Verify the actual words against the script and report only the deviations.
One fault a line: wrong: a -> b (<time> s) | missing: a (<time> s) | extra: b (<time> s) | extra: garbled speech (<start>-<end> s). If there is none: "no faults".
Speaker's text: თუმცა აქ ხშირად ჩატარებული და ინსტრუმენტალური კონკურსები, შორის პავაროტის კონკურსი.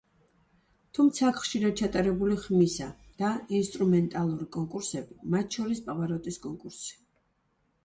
extra: ხმისა (2.4 s)
extra: მათ (5.4 s)